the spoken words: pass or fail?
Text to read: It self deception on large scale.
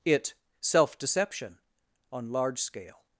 pass